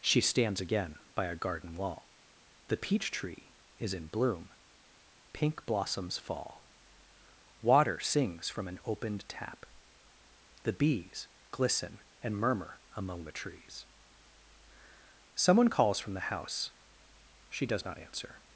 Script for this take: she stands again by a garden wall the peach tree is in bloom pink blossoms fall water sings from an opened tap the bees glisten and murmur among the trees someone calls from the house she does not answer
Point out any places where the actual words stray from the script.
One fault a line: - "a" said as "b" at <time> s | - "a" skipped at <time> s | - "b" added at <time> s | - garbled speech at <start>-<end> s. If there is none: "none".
none